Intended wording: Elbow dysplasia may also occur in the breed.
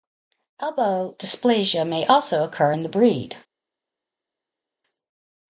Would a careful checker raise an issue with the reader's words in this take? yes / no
no